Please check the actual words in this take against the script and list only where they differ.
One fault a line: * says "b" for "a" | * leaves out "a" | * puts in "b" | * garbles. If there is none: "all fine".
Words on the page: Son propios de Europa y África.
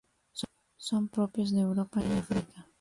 all fine